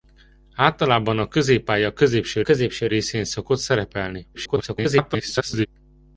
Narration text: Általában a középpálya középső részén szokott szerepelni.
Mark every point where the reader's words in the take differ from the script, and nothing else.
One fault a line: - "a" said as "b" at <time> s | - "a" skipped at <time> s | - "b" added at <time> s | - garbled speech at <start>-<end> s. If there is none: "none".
- "középső" added at 2.4 s
- garbled speech at 4.3-5.7 s